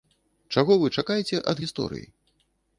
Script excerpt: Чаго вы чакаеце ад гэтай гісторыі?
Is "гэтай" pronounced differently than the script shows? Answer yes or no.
yes